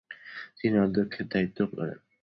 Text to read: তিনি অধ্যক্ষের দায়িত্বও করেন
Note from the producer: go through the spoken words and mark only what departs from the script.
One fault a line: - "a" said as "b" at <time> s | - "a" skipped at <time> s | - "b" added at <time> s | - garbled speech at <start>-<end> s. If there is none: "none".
none